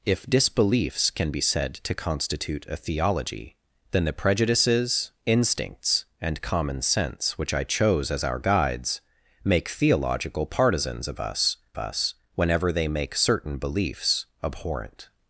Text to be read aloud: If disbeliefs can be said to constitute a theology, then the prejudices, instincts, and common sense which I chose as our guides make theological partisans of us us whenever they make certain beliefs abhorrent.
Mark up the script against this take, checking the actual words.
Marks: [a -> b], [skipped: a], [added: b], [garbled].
If disbeliefs can be said to constitute a theology, then the prejudices, instincts, and common sense which I chose as our guides make theological partisans of us us whenever they make certain beliefs abhorrent.